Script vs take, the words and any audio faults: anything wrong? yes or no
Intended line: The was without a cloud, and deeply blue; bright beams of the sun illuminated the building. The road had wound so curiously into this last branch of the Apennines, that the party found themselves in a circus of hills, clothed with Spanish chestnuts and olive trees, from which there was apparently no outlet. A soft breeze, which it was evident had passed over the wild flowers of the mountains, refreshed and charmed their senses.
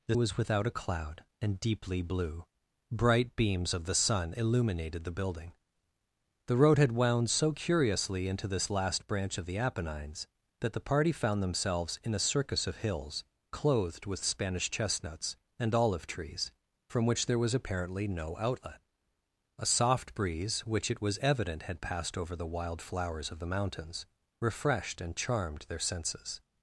no